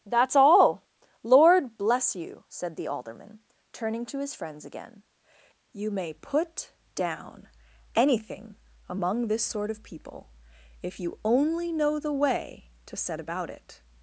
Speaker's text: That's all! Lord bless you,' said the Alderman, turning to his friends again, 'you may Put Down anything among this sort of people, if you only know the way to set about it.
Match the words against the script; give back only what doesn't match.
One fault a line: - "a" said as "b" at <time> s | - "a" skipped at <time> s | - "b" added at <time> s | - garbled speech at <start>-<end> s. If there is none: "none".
none